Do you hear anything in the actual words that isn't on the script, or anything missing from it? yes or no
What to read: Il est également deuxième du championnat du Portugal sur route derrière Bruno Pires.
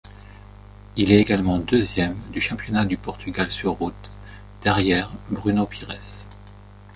no